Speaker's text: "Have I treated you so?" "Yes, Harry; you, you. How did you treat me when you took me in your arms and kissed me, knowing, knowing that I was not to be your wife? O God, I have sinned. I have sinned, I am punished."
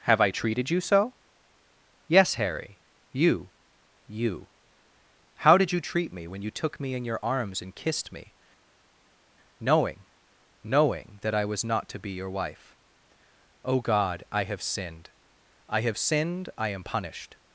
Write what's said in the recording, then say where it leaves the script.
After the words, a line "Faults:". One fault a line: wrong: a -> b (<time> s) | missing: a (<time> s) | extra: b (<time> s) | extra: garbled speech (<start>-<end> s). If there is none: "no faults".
"Have I treated you so?" "Yes, Harry; you, you. How did you treat me when you took me in your arms and kissed me, knowing, knowing that I was not to be your wife? O God, I have sinned. I have sinned, I am punished."
Faults:
no faults